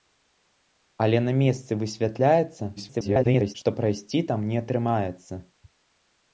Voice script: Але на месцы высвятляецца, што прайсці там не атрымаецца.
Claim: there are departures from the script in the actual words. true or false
true